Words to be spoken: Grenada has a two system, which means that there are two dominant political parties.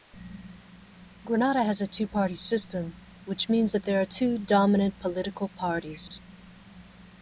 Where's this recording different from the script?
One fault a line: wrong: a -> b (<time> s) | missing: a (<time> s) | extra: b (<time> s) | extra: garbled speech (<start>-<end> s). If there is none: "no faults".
extra: party (2.1 s)